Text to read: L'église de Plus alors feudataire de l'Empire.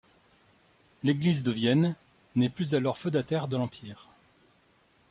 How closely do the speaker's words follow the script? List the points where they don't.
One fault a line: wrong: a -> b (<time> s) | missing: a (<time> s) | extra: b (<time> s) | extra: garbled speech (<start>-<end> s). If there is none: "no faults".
extra: Vienne n'est (1.5 s)